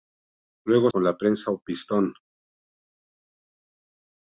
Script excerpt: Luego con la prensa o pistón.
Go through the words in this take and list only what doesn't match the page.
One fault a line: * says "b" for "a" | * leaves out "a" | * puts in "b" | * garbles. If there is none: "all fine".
all fine